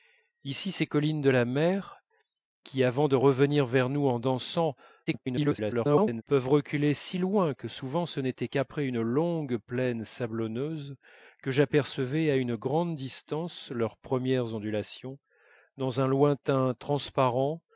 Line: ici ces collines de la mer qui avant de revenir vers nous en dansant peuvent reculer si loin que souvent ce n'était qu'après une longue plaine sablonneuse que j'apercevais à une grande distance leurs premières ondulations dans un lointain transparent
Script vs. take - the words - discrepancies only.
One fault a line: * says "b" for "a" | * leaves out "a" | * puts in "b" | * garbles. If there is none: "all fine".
* garbles